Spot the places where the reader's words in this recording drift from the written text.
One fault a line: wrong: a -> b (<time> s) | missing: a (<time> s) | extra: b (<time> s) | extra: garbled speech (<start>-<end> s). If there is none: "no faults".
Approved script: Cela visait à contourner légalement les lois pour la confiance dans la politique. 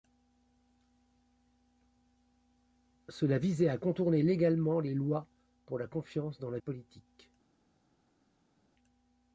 no faults